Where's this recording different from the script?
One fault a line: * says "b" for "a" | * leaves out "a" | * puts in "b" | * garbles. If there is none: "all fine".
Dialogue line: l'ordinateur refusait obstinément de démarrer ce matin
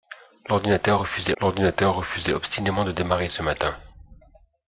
* puts in "l'ordinateur refusait"